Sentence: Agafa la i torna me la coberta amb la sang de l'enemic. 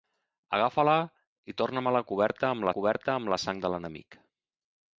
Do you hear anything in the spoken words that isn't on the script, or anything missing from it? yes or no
yes